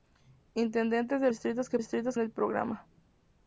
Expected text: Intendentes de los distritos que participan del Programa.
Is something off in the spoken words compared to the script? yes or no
yes